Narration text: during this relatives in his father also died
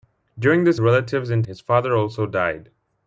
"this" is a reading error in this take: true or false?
false